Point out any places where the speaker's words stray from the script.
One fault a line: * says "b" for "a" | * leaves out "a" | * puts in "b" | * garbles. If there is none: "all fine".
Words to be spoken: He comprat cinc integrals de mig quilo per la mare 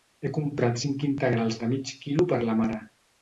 all fine